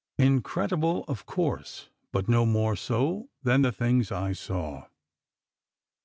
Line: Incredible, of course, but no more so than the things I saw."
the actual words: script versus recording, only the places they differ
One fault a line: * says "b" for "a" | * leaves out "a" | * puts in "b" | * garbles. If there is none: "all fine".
all fine